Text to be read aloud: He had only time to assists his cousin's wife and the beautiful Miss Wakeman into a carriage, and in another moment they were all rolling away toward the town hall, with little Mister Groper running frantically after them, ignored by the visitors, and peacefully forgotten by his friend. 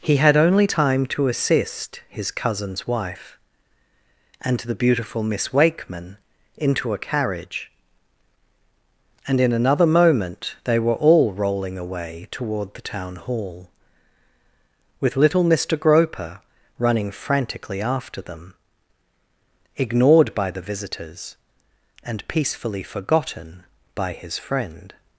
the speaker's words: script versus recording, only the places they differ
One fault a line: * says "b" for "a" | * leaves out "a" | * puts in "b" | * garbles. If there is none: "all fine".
* says "assist" for "assists"